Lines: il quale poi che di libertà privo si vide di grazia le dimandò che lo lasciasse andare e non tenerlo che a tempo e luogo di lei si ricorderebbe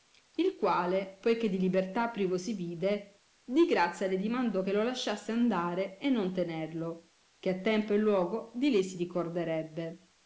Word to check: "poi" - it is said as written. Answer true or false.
true